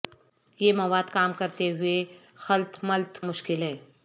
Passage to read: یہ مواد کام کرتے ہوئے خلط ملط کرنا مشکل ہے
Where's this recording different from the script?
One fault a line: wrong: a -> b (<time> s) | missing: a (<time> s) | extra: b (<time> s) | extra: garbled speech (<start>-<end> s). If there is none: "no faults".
missing: کرنا (3.2 s)